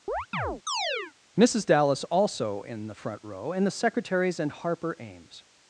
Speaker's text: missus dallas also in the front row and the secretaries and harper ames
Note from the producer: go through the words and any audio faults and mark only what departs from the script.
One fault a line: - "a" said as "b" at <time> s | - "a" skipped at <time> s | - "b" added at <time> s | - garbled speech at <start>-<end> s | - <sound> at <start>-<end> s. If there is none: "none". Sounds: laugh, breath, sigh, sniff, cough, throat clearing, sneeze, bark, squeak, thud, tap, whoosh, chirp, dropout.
- chirp at 0.1-1.1 s